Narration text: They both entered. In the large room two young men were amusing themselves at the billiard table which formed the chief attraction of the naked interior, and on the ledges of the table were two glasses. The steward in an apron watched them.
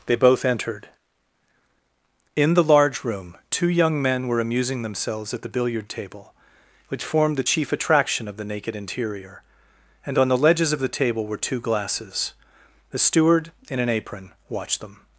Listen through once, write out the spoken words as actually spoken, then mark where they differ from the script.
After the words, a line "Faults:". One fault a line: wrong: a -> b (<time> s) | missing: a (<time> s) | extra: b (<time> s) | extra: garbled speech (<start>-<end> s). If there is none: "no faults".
They both entered. In the large room two young men were amusing themselves at the billiard table which formed the chief attraction of the naked interior, and on the ledges of the table were two glasses. The steward in an apron watched them.
Faults:
no faults